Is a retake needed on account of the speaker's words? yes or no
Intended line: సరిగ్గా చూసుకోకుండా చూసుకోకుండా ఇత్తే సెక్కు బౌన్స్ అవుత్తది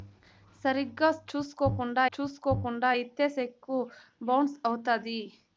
no